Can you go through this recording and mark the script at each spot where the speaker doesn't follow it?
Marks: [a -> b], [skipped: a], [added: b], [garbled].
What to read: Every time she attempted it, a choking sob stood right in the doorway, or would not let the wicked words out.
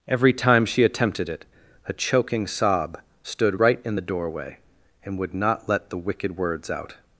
Every time she attempted it, a choking sob stood right in the doorway, [or -> and] would not let the wicked words out.